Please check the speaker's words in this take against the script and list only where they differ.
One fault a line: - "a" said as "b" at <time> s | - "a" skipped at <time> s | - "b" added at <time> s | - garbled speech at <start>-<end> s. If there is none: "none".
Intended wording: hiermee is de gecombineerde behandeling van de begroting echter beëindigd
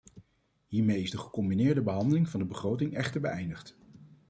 none